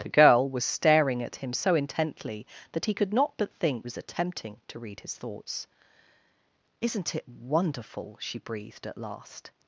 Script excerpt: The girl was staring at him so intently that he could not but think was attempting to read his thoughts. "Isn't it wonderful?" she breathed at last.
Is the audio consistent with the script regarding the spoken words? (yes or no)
yes